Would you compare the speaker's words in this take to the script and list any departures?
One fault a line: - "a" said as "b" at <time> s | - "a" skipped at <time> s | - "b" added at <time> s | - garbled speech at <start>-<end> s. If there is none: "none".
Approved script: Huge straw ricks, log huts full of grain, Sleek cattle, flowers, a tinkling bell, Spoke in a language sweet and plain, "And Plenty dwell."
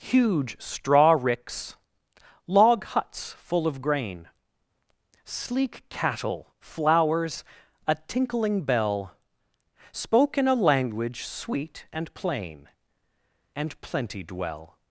none